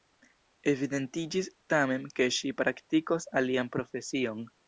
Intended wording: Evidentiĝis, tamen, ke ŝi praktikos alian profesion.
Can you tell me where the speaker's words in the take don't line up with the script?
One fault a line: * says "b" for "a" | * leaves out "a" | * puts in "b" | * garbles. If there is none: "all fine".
all fine